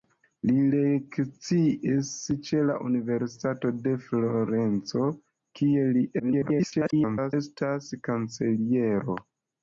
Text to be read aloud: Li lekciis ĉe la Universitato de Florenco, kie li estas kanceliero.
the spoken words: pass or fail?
fail